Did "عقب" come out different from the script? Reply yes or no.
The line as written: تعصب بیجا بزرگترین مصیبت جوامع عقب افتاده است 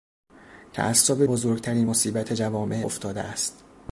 yes